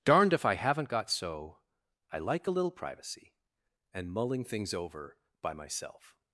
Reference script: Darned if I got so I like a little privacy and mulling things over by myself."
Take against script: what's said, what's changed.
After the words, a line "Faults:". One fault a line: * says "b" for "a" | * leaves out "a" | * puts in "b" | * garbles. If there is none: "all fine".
Darned if I haven't got so I like a little privacy and mulling things over by myself."
Faults:
* puts in "haven't"